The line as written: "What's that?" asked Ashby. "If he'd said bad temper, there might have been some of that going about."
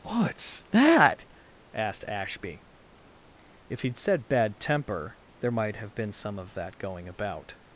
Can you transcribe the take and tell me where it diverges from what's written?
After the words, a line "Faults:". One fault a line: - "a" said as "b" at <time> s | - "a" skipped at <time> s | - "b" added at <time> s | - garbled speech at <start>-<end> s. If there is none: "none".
"What's that?" asked Ashby. "If he'd said bad temper, there might have been some of that going about."
Faults:
none